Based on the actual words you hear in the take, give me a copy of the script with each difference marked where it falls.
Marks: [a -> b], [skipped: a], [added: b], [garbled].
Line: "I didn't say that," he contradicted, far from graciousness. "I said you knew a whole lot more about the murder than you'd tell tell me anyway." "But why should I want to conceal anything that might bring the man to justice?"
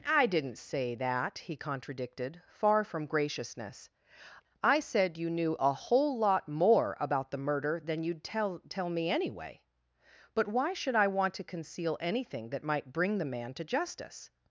"I didn't say that," he contradicted, far from graciousness. "I said you knew a whole lot more about the murder than you'd tell tell me anyway." "But why should I want to conceal anything that might bring the man to justice?"